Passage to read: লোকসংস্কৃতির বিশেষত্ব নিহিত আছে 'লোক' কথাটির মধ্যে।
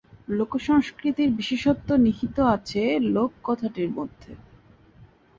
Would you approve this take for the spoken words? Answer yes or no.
yes